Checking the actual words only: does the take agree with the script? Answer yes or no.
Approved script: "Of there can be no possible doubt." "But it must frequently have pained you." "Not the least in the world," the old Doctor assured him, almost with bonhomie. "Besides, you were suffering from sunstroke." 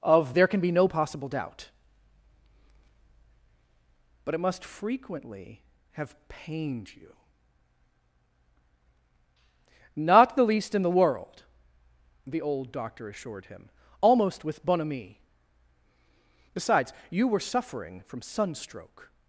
yes